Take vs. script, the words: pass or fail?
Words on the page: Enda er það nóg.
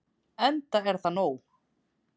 pass